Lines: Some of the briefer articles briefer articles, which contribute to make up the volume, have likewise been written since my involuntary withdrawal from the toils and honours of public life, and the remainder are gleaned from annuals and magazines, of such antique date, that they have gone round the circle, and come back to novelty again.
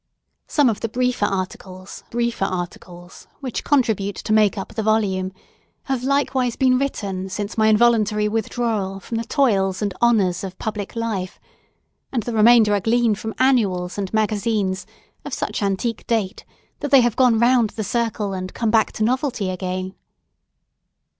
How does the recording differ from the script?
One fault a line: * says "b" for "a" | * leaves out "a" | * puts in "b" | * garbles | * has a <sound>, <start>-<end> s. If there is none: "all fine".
all fine